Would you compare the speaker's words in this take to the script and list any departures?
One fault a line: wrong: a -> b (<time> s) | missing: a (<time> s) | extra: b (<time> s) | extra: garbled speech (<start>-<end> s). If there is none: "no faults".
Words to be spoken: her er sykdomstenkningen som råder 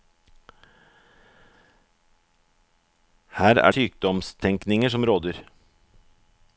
no faults